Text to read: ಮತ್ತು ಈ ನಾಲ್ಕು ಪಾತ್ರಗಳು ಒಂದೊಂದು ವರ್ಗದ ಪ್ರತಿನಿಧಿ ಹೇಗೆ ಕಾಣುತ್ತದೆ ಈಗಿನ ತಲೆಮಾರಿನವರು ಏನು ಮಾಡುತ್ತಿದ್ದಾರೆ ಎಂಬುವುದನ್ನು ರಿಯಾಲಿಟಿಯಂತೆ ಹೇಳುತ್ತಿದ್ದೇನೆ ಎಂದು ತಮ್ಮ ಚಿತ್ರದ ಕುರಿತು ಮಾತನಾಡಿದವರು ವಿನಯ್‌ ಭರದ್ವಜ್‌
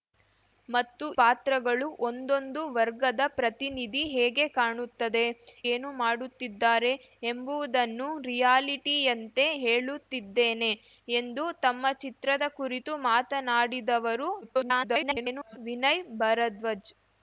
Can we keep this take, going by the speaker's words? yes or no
no